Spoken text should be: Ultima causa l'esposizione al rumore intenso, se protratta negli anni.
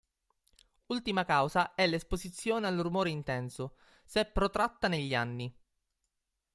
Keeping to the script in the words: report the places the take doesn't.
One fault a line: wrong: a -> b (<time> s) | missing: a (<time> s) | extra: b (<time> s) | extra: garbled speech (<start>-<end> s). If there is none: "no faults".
extra: è (1.8 s)